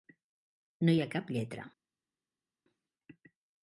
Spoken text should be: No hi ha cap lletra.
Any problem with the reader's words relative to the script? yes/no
no